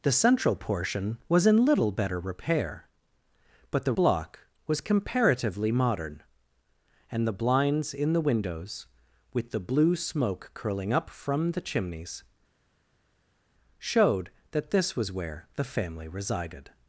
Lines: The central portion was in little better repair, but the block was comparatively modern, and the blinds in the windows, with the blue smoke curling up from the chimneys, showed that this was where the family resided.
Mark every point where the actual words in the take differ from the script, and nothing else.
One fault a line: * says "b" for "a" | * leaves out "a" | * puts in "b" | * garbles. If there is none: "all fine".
all fine